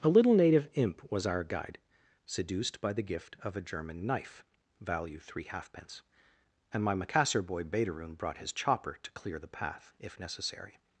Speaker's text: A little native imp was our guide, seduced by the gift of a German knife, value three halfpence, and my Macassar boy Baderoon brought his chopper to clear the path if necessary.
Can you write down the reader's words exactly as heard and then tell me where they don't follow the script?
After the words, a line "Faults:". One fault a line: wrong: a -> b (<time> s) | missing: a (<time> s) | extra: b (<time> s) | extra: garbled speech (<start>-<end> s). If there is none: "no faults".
A little native imp was our guide, seduced by the gift of a German knife, value three halfpence, and my Macassar boy Baderoon brought his chopper to clear the path if necessary.
Faults:
no faults